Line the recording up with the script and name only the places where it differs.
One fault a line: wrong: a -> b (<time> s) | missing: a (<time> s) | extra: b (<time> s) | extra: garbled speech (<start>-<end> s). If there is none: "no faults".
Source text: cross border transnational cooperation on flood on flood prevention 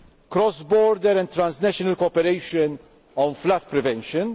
extra: and (1.2 s)
missing: on flood (3.6 s)